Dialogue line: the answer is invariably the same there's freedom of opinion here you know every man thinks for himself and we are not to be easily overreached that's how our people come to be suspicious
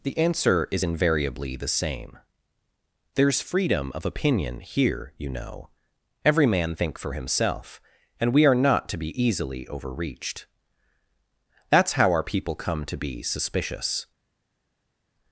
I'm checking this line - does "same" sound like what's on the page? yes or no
yes